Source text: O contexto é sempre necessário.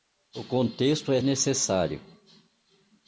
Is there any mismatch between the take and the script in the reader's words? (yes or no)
yes